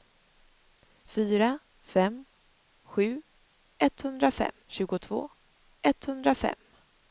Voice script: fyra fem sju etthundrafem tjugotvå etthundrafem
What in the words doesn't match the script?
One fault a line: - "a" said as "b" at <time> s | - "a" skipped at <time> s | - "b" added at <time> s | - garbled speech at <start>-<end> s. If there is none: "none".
none